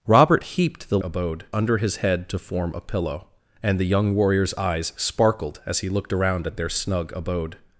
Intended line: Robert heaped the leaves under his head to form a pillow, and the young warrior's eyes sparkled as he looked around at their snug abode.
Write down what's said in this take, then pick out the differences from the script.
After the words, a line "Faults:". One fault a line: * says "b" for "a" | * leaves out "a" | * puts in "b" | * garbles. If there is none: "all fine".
Robert heaped the abode under his head to form a pillow, and the young warrior's eyes sparkled as he looked around at their snug abode.
Faults:
* says "abode" for "leaves"